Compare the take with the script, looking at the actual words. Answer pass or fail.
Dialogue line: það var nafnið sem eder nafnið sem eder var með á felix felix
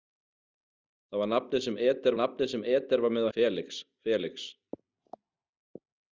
pass